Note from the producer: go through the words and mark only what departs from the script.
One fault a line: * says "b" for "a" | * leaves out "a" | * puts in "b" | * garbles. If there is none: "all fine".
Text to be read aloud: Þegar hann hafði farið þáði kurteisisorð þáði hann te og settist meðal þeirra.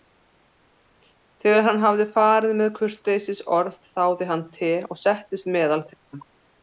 * says "með" for "þáði"